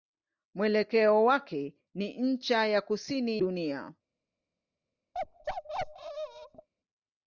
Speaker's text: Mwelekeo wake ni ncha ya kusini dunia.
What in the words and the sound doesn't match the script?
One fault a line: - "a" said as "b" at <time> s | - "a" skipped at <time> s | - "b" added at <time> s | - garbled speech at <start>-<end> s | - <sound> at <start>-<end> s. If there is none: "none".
- bark at 5.1-6.7 s